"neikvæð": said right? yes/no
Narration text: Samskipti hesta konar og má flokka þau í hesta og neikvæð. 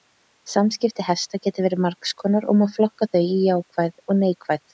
yes